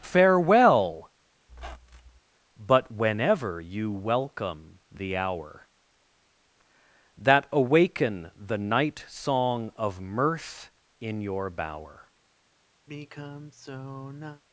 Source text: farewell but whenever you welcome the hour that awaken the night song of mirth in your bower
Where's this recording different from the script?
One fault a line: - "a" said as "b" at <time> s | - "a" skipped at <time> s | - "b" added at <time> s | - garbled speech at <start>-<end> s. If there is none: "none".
none